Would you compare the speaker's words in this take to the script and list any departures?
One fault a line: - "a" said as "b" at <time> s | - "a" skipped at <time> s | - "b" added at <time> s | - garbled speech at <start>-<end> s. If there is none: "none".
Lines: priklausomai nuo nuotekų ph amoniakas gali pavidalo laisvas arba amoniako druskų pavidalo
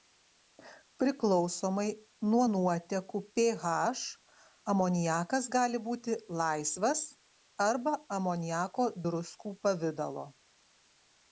- "pavidalo" said as "būti" at 5.9 s